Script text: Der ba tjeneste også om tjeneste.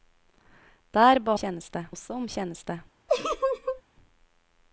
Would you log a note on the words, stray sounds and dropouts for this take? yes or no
yes